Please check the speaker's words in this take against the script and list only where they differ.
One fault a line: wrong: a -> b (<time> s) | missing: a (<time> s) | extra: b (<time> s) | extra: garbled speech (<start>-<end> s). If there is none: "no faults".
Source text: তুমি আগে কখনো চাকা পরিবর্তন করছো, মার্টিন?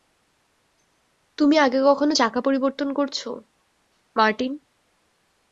no faults